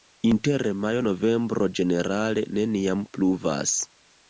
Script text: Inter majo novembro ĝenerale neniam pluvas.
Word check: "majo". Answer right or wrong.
right